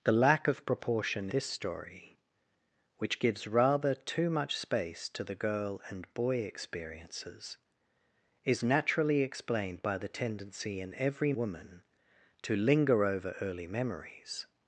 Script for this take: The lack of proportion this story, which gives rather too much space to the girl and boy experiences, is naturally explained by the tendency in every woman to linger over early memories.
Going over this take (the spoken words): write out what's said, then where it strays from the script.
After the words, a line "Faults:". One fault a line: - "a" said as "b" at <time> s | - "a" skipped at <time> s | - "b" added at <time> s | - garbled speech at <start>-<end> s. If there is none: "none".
The lack of proportion this story, which gives rather too much space to the girl and boy experiences, is naturally explained by the tendency in every woman to linger over early memories.
Faults:
none